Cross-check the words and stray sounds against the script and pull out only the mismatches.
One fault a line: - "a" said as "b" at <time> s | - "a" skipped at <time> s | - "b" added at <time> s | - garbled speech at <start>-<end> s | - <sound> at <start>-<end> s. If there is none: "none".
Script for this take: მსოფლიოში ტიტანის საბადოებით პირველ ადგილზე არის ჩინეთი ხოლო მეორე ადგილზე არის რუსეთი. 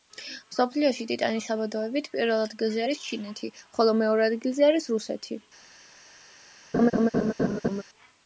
- laugh at 6.7-7.8 s